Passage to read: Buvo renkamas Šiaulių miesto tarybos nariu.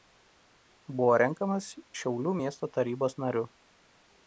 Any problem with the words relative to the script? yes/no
no